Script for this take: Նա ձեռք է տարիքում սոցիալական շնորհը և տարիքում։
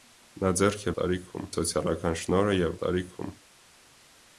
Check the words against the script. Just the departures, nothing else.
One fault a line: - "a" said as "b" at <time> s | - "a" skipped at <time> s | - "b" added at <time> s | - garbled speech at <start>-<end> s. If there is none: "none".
none